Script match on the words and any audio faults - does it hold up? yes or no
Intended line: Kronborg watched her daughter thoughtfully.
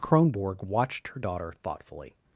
yes